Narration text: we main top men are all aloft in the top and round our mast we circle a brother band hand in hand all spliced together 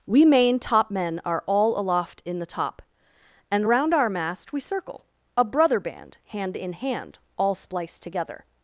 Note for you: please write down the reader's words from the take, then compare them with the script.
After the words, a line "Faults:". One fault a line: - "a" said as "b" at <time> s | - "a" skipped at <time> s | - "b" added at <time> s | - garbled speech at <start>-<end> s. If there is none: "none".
we main top men are all aloft in the top and round our mast we circle a brother band hand in hand all spliced together
Faults:
none